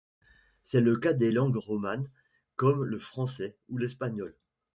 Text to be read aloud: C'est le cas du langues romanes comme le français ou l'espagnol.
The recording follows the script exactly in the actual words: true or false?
false